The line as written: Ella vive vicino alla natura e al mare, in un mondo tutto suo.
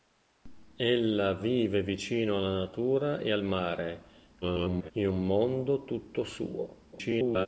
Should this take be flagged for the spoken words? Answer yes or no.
yes